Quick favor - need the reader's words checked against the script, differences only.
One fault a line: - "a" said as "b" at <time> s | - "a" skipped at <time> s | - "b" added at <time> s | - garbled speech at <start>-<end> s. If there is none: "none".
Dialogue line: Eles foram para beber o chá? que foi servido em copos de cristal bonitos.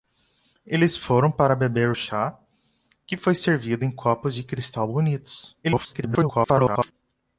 - garbled speech at 5.6-6.9 s